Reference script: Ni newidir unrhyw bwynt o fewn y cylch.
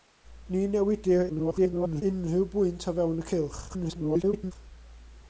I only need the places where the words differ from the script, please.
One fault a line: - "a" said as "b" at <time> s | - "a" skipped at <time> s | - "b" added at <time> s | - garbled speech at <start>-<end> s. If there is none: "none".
- garbled speech at 1.3-2.0 s
- garbled speech at 3.7-4.5 s